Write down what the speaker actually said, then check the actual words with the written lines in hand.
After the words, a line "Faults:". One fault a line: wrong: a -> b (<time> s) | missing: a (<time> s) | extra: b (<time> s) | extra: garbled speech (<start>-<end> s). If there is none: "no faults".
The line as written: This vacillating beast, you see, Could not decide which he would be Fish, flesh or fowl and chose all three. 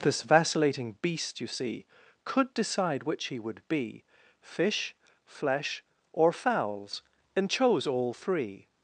This vacillating beast, you see, Could decide which he would be Fish, flesh or fowls and chose all three.
Faults:
missing: not (2.5 s)
wrong: fowl -> fowls (6.3 s)